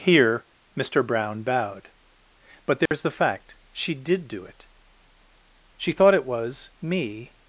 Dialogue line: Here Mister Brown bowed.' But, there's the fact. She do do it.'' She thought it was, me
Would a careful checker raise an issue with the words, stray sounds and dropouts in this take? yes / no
yes